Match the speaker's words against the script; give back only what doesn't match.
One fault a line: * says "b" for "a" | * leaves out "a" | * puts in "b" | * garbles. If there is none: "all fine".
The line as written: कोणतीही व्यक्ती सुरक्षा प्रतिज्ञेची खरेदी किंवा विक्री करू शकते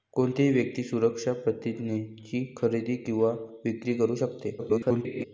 * garbles